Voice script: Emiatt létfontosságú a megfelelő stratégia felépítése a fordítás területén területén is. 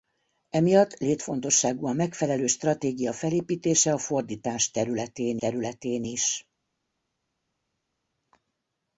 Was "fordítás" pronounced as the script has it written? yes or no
yes